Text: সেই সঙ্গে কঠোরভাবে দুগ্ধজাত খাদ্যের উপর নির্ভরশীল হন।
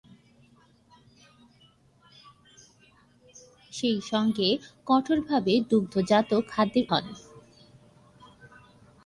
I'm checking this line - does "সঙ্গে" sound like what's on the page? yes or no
yes